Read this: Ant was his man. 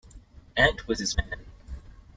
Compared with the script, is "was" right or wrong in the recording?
right